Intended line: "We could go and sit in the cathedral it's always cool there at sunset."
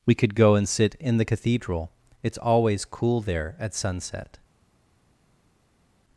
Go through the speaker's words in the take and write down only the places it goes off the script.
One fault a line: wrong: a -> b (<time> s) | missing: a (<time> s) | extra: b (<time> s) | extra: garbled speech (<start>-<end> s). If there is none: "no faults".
no faults